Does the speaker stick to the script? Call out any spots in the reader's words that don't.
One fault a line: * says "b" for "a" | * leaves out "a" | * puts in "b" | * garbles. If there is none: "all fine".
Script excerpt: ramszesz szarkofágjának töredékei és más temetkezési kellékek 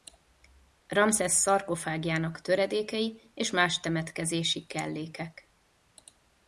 all fine